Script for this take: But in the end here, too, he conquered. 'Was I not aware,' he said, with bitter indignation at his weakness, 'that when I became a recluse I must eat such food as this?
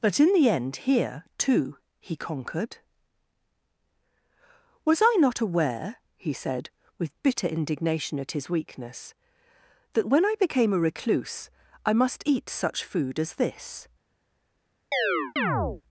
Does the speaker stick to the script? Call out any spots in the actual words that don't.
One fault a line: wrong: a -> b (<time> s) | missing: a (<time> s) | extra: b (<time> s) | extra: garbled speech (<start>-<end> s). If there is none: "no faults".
no faults